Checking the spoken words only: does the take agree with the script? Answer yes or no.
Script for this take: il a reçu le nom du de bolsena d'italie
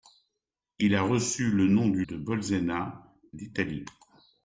yes